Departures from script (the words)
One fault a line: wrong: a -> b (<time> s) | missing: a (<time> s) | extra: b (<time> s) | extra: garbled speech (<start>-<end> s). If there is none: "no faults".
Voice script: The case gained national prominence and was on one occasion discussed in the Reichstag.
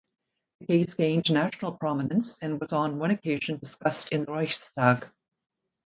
no faults